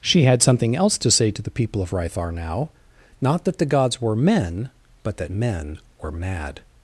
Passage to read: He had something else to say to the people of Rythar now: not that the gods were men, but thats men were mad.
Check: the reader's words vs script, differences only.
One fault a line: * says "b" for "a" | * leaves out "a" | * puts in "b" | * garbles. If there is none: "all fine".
* says "She" for "He"
* says "that" for "thats"